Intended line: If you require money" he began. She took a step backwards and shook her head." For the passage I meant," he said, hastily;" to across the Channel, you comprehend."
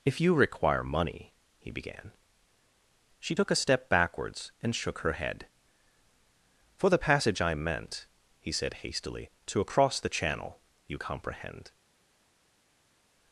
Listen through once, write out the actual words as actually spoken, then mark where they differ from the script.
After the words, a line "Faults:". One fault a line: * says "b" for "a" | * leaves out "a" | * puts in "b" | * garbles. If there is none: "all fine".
If you require money" he began. She took a step backwards and shook her head." For the passage I meant," he said, hastily;" to across the Channel, you comprehend."
Faults:
all fine